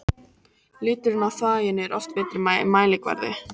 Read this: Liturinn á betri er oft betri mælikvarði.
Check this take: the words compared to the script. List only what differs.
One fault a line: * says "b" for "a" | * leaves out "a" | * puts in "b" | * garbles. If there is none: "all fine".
* says "þvaginu" for "betri"